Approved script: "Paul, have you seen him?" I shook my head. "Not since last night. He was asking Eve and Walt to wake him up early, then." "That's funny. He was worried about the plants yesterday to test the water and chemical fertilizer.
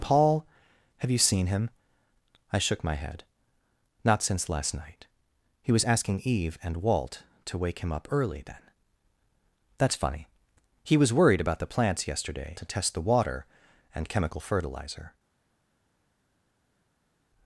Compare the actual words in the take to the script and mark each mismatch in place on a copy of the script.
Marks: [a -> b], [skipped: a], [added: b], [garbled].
"Paul, have you seen him?" I shook my head. "Not since last night. He was asking Eve and Walt to wake him up early, then." "That's funny. He was worried about the plants yesterday to test the water and chemical fertilizer.